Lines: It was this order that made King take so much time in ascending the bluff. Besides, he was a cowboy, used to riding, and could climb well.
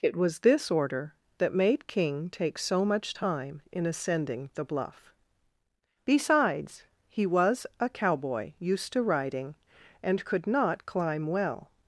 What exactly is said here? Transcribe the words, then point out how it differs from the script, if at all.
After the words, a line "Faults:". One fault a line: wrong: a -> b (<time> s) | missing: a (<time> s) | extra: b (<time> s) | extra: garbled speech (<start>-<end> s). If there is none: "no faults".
It was this order that made King take so much time in ascending the bluff. Besides, he was a cowboy, used to riding, and could not climb well.
Faults:
extra: not (10.5 s)